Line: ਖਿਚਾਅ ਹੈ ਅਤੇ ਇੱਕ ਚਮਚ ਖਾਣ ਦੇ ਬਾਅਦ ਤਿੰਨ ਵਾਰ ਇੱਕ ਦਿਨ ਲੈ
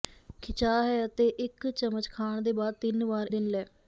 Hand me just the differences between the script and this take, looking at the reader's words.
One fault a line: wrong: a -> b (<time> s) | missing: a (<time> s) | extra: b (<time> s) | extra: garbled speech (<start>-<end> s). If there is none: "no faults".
missing: ਇੱਕ (3.3 s)